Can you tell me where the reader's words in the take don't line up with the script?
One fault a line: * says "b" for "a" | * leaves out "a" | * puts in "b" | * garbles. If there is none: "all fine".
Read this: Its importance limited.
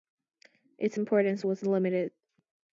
* puts in "was"